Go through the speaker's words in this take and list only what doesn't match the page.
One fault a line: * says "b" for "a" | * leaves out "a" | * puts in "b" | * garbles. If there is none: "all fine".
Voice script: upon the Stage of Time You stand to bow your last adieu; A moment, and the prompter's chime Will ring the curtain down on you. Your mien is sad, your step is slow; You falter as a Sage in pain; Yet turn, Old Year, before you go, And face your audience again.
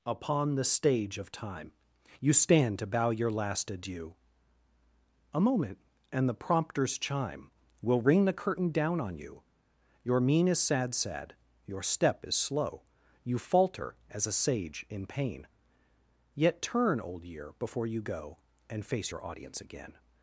* puts in "sad"